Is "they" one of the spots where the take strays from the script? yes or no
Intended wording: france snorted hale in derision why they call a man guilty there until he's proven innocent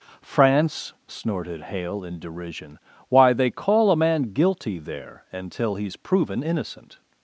no